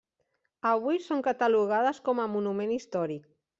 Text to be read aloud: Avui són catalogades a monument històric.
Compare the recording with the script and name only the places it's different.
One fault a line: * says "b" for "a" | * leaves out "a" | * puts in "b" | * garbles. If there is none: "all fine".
* puts in "com"